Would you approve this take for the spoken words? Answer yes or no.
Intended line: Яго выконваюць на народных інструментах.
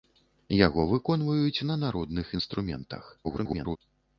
no